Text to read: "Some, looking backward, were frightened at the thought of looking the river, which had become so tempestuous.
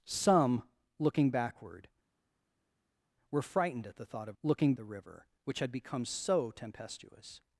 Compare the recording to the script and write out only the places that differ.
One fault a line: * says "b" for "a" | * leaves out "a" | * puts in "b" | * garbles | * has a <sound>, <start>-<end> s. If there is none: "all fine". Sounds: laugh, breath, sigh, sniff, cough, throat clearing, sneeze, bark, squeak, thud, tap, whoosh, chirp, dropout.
all fine